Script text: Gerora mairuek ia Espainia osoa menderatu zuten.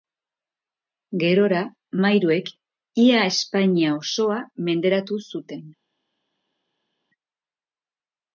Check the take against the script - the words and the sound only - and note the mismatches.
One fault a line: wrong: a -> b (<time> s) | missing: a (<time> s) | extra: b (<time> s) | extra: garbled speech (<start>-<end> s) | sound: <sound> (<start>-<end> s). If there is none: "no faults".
no faults